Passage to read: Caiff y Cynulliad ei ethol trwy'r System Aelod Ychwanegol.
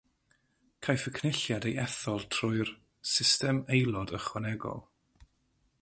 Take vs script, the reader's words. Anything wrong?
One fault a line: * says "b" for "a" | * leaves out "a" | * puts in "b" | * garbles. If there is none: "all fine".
all fine